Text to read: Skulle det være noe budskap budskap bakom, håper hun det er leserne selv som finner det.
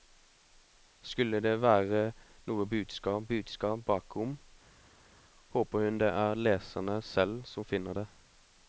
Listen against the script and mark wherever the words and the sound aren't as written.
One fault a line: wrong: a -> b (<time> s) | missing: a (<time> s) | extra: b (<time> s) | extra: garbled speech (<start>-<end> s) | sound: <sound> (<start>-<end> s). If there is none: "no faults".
no faults